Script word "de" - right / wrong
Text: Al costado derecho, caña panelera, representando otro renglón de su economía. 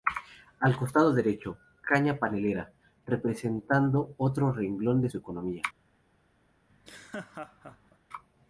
right